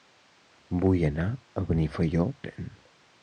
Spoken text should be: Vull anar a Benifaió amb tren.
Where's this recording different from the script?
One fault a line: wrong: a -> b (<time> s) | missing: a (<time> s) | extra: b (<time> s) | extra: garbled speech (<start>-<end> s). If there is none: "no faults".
missing: amb (2.3 s)